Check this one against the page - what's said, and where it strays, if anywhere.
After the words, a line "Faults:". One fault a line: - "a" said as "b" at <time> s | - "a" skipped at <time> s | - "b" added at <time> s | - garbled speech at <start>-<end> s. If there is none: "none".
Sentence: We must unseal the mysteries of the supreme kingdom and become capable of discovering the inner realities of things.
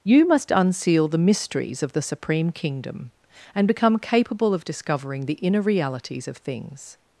You must unseal the mysteries of the supreme kingdom and become capable of discovering the inner realities of things.
Faults:
- "We" said as "You" at 0.0 s